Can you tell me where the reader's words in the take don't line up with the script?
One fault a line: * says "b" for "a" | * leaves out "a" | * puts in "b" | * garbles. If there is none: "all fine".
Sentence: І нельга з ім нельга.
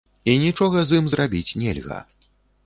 * says "нічога" for "нельга"
* puts in "зрабіць"